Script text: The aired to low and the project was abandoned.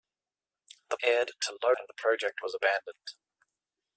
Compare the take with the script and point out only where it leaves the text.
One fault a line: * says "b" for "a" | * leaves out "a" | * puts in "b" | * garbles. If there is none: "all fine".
all fine